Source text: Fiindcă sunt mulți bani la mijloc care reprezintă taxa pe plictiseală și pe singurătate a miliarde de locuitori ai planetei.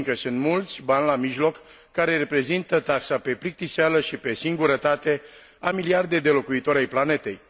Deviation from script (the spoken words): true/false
false